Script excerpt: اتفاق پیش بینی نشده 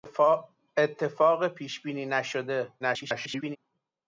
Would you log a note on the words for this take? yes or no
yes